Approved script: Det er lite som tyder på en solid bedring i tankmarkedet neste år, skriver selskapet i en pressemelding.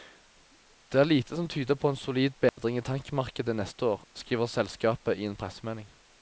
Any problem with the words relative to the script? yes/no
no